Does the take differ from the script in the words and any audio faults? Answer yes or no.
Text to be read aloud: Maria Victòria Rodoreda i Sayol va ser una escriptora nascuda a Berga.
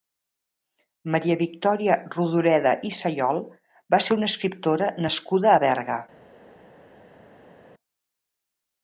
no